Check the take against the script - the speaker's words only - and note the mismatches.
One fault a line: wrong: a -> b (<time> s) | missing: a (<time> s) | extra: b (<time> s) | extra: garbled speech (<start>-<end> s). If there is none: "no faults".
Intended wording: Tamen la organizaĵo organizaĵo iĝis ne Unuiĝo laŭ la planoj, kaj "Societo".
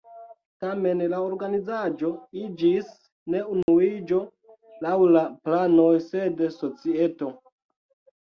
missing: organizaĵo (2.1 s)
wrong: kaj -> sed (6.1 s)